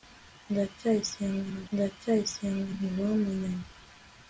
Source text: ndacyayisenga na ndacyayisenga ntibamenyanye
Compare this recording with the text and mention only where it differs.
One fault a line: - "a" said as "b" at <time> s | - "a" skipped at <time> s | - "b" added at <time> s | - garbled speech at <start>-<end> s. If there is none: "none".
none